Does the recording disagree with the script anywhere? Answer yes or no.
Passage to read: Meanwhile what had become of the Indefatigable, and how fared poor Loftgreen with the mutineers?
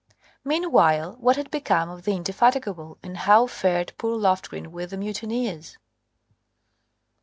no